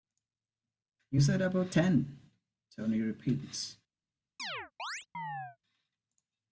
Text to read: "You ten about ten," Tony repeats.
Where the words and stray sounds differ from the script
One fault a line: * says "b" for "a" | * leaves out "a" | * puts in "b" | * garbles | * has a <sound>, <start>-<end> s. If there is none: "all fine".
* says "said" for "ten"
* has a chirp, 4.4-5.6 s